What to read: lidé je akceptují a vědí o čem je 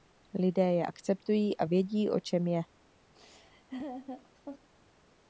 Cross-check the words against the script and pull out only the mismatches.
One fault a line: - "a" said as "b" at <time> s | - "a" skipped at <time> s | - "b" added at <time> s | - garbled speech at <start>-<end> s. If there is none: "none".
none